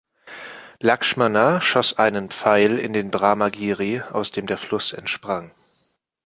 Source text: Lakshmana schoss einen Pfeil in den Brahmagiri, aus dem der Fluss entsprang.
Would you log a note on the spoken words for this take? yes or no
no